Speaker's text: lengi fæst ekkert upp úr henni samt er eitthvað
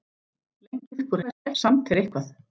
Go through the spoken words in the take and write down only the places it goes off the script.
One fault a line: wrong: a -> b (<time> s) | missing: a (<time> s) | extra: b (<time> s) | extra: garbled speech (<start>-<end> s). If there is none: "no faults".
missing: fæst ekkert (1.0 s)
wrong: henni -> fæst (1.2 s)